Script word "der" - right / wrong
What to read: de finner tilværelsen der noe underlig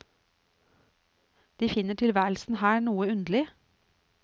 wrong